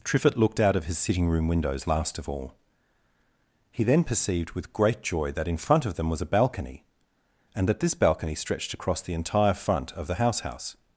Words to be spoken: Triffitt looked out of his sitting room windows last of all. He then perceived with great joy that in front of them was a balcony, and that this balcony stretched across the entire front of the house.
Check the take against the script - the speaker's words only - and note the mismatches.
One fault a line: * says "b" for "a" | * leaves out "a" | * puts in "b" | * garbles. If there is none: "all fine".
* puts in "house"